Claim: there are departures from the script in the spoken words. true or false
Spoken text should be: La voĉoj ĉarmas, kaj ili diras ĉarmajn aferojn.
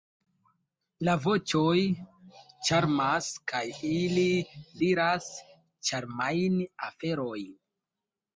false